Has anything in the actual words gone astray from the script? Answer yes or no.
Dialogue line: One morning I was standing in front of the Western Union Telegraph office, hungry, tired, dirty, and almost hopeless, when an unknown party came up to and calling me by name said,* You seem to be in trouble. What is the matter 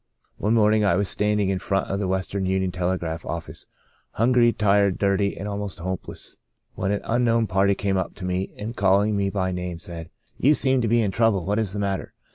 yes